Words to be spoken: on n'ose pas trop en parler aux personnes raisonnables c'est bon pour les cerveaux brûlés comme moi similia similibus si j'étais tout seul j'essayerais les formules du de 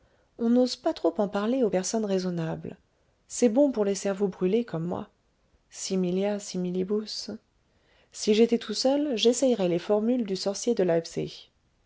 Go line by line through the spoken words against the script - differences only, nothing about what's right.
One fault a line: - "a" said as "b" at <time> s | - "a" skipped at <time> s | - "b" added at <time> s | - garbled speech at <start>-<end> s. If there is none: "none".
- "sorcier" added at 10.3 s